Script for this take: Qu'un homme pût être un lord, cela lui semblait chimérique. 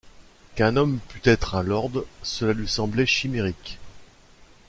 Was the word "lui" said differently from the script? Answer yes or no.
no